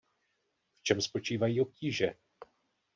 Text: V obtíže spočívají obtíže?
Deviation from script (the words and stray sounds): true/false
true